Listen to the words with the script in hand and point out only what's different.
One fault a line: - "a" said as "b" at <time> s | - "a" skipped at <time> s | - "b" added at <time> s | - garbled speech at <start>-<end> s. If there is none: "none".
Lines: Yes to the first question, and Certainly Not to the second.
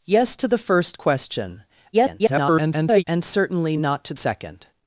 - garbled speech at 1.9-3.0 s
- "the" skipped at 4.1 s